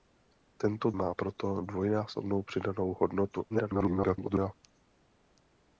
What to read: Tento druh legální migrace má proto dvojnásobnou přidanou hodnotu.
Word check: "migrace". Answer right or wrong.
wrong